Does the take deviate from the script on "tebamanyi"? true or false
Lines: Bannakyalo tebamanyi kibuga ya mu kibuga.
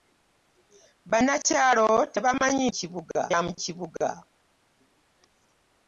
false